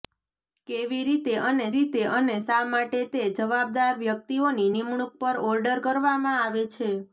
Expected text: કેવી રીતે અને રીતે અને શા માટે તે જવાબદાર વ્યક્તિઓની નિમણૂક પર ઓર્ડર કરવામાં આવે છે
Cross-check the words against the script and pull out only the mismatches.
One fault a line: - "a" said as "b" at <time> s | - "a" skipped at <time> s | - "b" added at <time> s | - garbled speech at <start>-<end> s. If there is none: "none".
none